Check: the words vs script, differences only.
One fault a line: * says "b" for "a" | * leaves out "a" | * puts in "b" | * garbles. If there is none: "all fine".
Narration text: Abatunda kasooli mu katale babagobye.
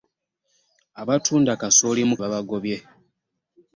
* leaves out "katale"